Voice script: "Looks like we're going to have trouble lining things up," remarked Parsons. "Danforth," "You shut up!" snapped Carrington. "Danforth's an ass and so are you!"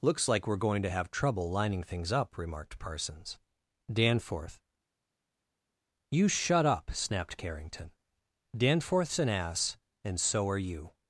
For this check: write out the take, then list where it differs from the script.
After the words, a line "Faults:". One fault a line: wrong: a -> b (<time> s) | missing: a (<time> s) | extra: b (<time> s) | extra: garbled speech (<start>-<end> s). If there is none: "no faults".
"Looks like we're going to have trouble lining things up," remarked Parsons. "Danforth," "You shut up!" snapped Carrington. "Danforth's an ass and so are you!"
Faults:
no faults